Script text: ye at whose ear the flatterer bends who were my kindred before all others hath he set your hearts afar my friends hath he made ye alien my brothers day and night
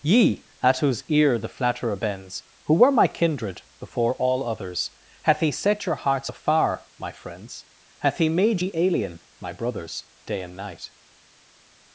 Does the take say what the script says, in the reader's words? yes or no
yes